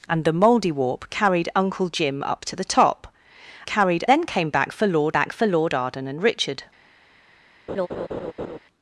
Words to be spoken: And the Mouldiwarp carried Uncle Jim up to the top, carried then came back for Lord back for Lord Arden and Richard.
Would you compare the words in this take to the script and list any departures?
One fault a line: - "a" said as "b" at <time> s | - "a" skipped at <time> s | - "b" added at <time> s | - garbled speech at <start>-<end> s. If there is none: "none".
none